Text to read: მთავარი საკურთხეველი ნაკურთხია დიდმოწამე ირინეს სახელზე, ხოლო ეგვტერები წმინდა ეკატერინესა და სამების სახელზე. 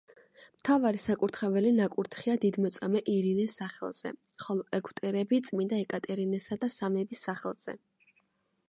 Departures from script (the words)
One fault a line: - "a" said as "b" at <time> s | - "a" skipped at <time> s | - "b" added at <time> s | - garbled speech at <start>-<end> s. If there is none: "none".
none